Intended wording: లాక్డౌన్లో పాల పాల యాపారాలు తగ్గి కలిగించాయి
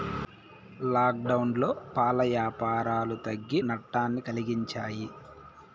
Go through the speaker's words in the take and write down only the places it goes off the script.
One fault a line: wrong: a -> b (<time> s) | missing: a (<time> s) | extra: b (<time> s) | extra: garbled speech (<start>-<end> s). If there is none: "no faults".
missing: పాల (2.2 s)
extra: నట్టాన్ని (3.7 s)